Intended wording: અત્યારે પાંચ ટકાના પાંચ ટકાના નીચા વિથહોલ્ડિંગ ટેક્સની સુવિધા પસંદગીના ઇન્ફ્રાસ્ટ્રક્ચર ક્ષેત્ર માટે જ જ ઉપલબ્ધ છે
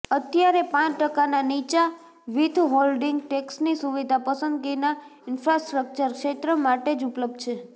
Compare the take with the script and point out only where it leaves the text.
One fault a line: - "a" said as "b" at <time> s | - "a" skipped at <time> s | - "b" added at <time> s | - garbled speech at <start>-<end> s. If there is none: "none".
- "પાંચ ટકાના" skipped at 1.4 s
- "જ" skipped at 7.1 s